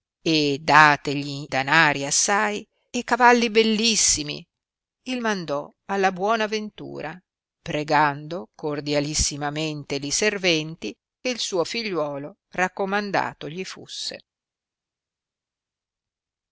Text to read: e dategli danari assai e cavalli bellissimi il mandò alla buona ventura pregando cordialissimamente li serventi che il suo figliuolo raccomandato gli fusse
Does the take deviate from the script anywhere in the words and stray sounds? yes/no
no